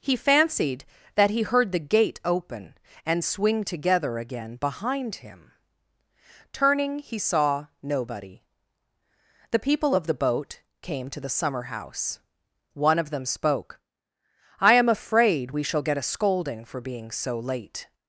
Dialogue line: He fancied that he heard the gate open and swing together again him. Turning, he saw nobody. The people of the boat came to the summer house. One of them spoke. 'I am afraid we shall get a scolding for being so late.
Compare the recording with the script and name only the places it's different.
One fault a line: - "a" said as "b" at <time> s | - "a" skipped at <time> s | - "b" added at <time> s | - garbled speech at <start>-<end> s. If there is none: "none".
- "behind" added at 4.5 s